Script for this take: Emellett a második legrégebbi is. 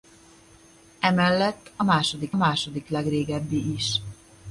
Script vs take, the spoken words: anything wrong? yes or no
yes